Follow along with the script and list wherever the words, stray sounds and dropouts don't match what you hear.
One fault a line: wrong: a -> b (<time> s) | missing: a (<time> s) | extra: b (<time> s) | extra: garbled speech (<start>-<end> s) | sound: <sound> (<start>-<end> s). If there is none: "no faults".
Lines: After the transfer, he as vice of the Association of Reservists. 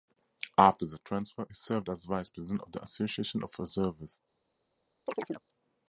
extra: served (1.5 s)
extra: president (2.3 s)
sound: chirp (5.1-5.4 s)